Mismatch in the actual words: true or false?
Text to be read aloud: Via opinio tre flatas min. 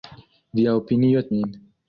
true